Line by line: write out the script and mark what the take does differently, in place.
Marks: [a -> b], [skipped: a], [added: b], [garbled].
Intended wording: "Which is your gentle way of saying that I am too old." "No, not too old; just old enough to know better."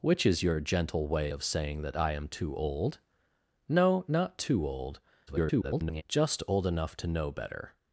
"Which is your gentle way of saying that I am too old." "No, not too old; [garbled] just old enough to know better."